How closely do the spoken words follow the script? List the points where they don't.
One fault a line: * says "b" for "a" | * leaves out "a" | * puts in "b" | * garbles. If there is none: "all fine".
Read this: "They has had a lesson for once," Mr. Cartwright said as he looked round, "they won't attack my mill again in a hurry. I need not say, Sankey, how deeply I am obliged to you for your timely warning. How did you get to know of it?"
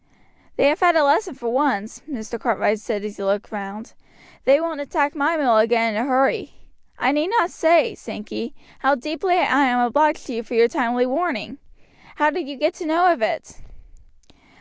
* says "have" for "has"